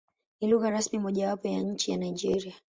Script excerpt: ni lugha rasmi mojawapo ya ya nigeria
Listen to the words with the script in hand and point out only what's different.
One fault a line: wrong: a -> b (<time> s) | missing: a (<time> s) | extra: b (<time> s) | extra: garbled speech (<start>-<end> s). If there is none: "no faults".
extra: nchi (1.6 s)